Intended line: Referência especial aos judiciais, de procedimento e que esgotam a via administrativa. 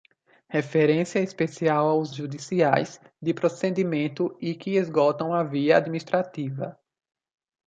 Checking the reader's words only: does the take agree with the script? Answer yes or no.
yes